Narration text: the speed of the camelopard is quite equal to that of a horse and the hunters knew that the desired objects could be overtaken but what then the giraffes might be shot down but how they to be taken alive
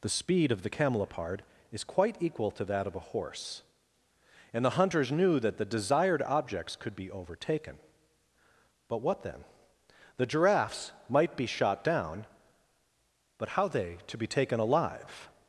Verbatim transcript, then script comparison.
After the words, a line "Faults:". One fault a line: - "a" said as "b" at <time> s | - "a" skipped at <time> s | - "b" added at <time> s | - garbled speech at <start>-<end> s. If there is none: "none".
the speed of the camelopard is quite equal to that of a horse and the hunters knew that the desired objects could be overtaken but what then the giraffes might be shot down but how they to be taken alive
Faults:
none